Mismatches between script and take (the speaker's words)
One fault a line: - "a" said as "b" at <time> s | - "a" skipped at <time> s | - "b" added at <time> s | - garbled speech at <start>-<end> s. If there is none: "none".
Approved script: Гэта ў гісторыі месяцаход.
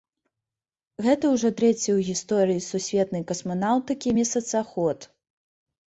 - "ўжо трэці" added at 1.3 s
- "сусветнай касманаўтыкі" added at 2.7 s